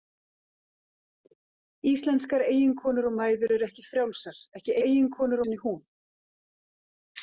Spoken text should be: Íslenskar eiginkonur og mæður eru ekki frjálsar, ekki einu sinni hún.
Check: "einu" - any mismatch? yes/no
yes